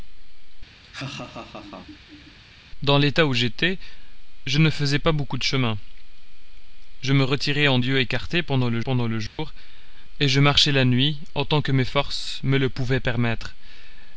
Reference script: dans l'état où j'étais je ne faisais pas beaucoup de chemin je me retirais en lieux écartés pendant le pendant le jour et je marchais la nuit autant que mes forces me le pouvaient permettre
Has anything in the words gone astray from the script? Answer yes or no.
no